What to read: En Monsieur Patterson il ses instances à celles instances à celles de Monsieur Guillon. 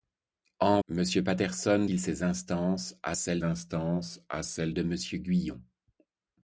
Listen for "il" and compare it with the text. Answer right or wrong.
right